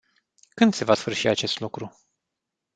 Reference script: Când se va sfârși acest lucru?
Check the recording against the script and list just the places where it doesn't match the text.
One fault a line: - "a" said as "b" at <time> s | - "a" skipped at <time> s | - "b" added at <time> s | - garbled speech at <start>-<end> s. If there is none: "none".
none